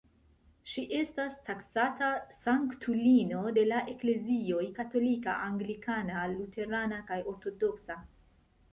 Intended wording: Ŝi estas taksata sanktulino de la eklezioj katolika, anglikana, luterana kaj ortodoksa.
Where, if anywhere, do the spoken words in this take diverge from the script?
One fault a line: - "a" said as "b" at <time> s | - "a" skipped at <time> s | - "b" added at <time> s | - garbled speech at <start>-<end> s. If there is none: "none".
none